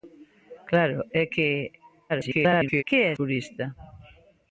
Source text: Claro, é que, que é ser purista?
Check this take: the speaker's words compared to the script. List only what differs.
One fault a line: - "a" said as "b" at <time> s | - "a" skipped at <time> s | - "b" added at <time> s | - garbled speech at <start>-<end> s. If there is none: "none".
- garbled speech at 2.1-2.8 s
- "ser" skipped at 3.1 s